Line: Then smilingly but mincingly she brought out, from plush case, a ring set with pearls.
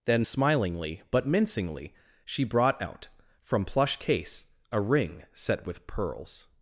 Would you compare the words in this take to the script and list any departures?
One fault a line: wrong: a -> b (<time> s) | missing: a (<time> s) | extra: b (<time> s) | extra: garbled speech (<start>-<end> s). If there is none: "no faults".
no faults